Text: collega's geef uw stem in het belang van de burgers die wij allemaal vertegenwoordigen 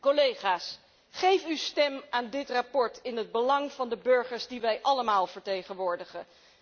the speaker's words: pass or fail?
fail